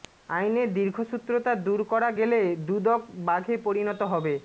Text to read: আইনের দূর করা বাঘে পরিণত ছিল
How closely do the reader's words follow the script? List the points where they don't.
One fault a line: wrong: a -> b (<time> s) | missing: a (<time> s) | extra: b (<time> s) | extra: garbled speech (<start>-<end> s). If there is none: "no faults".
extra: দীর্ঘসূত্রতা (0.7 s)
extra: গেলে দুদক (2.2 s)
wrong: ছিল -> হবে (4.1 s)